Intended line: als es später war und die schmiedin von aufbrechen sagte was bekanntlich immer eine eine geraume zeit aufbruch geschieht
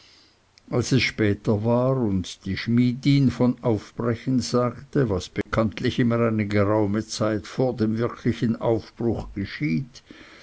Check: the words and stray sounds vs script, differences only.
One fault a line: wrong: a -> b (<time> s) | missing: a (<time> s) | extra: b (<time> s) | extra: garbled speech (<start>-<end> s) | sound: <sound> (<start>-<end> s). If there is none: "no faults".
sound: dropout (5.4-5.5 s)
missing: eine (6.5 s)
extra: vor dem wirklichen (7.5 s)